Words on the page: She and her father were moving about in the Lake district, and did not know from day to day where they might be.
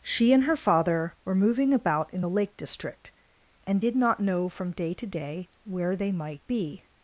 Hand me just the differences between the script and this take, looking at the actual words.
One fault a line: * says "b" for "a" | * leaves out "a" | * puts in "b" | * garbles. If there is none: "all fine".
all fine